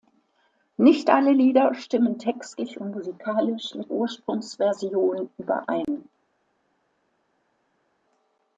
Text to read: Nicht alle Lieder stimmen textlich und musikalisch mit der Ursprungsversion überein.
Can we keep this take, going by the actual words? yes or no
no